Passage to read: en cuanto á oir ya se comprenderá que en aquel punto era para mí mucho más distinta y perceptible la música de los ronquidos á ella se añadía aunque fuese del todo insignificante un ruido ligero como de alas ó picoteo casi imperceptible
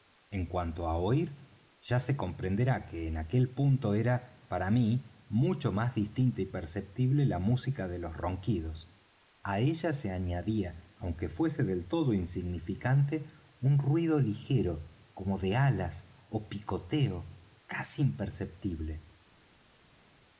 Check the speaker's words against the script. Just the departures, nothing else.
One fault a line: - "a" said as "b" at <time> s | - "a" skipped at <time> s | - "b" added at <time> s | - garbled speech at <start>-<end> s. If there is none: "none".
none